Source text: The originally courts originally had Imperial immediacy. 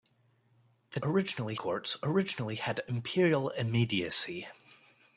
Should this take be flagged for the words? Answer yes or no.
no